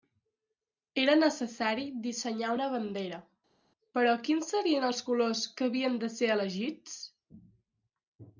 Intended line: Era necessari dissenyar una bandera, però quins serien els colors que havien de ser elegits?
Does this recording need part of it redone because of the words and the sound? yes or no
no